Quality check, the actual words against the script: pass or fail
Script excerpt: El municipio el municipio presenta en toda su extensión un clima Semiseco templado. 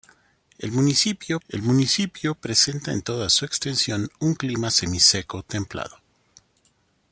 pass